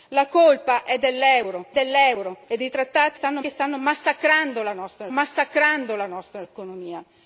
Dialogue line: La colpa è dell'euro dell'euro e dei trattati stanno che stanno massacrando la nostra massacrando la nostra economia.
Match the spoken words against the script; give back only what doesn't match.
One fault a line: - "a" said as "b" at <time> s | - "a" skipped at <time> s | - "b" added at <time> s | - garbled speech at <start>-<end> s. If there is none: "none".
none